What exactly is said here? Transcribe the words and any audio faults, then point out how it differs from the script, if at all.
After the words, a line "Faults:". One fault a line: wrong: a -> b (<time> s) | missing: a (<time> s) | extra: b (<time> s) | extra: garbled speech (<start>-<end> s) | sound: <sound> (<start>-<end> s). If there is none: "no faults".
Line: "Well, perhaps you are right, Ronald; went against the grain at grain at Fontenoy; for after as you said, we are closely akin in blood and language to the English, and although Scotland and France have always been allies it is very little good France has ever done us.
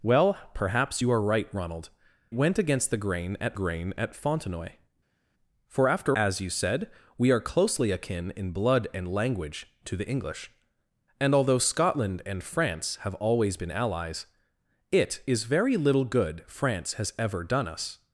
"Well, perhaps you are right, Ronald; went against the grain at grain at Fontenoy; for after as you said, we are closely akin in blood and language to the English, and although Scotland and France have always been allies it is very little good France has ever done us.
Faults:
no faults